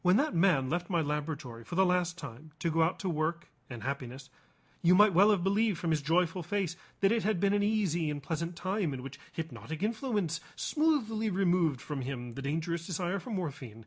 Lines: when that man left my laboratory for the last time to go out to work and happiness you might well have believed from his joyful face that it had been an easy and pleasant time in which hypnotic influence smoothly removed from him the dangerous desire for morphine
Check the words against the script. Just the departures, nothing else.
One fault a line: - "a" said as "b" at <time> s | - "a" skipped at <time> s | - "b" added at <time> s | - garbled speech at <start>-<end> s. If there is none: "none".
none